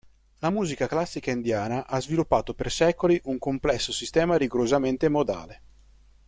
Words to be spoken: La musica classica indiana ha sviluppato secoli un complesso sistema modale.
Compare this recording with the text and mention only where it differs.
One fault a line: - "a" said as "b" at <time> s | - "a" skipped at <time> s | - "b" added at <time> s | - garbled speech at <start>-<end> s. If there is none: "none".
- "per" added at 2.5 s
- "rigorosamente" added at 4.3 s